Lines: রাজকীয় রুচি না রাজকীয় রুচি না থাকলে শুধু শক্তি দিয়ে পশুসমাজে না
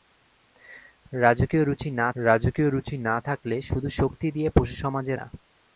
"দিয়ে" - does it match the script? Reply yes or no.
yes